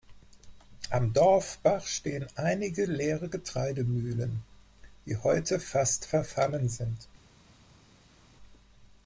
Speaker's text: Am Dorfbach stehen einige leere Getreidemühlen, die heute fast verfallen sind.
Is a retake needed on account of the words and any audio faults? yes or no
no